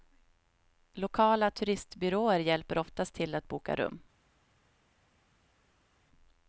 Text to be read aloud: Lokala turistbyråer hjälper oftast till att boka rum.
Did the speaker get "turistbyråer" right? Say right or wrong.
right